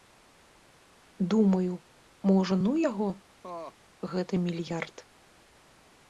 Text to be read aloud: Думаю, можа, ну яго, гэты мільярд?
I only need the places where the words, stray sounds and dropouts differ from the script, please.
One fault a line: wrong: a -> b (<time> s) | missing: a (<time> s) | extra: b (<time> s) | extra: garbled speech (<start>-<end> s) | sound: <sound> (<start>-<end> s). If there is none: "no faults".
sound: laugh (3.4-3.7 s)